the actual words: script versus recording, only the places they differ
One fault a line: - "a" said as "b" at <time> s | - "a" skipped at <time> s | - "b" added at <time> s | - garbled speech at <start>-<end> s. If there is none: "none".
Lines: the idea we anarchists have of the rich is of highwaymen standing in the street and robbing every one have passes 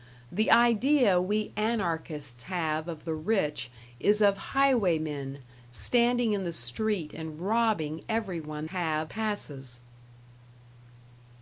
none